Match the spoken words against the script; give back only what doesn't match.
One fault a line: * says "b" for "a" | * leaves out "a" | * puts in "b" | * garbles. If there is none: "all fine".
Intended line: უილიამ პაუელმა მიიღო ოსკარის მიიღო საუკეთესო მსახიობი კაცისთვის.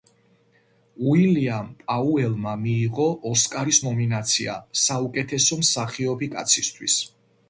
* says "ნომინაცია" for "მიიღო"